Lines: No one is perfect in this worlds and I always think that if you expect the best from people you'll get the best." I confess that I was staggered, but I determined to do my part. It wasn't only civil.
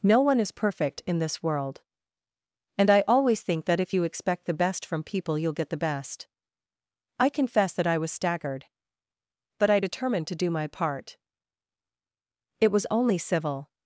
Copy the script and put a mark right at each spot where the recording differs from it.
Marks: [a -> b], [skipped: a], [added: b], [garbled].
No one is perfect in this [worlds -> world] and I always think that if you expect the best from people you'll get the best." I confess that I was staggered, but I determined to do my part. It [wasn't -> was] only civil.